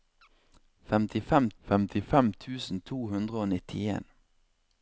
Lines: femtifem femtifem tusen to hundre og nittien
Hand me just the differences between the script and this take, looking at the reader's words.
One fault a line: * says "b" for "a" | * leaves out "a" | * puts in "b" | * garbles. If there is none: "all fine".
all fine